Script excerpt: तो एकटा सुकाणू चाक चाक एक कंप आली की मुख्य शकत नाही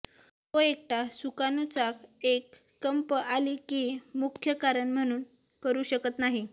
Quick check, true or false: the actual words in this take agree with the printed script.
false